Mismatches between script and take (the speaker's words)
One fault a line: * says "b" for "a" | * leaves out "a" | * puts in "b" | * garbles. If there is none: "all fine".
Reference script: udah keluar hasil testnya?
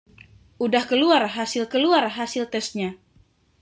* puts in "keluar hasil"